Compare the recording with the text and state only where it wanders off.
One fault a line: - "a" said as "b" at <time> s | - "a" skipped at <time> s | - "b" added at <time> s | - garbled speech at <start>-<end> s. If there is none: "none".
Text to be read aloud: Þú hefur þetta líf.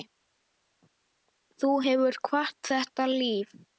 - "kvatt" added at 2.3 s